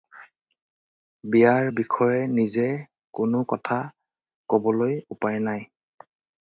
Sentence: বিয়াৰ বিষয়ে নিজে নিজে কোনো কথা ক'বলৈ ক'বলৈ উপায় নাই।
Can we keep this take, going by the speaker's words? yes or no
no